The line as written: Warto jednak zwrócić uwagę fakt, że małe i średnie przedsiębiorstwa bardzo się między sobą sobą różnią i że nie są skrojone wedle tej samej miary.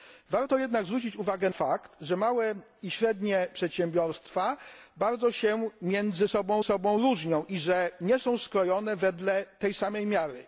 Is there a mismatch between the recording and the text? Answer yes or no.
no